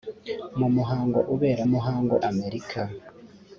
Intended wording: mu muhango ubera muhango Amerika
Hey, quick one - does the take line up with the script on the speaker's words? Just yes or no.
yes